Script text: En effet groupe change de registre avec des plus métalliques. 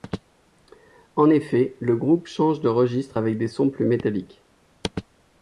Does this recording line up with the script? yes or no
no